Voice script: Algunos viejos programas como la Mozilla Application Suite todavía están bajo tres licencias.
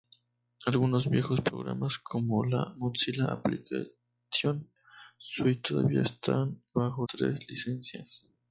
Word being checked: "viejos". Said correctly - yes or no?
yes